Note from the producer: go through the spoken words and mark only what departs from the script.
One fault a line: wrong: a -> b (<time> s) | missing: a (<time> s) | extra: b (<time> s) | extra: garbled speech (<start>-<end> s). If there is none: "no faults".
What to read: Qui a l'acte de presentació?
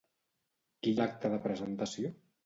no faults